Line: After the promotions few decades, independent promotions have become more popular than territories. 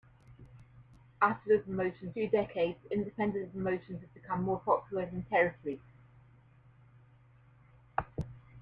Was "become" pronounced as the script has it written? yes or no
yes